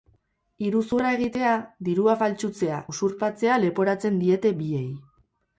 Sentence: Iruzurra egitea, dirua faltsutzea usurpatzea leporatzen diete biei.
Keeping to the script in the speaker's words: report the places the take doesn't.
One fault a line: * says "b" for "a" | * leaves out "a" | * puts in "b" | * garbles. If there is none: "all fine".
all fine